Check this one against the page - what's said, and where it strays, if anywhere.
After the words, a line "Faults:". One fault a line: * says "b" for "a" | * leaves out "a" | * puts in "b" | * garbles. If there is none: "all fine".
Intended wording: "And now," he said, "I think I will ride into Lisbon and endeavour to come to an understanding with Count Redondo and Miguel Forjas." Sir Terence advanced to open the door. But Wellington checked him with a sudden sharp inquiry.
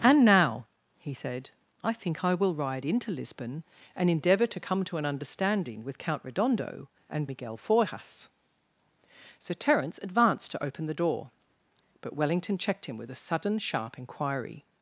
"And now," he said, "I think I will ride into Lisbon and endeavour to come to an understanding with Count Redondo and Miguel Forjas." Sir Terence advanced to open the door. But Wellington checked him with a sudden sharp inquiry.
Faults:
all fine